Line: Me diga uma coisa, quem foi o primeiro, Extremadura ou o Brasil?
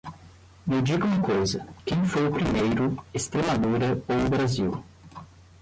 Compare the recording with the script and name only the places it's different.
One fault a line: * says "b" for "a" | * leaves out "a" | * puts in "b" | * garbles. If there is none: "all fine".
all fine